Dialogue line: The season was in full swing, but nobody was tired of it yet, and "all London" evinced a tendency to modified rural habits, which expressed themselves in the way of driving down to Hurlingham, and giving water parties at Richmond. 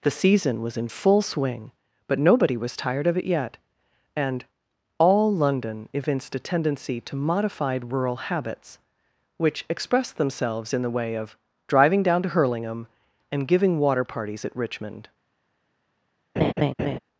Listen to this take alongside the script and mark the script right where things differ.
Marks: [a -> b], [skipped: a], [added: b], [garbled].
The season was in full swing, but nobody was tired of it yet, and "all London" evinced a tendency to modified rural habits, which expressed themselves in the way of driving down to Hurlingham, and giving water parties at Richmond.